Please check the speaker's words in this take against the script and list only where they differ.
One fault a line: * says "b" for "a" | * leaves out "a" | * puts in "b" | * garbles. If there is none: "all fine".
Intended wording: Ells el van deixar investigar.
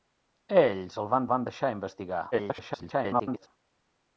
* puts in "van"
* garbles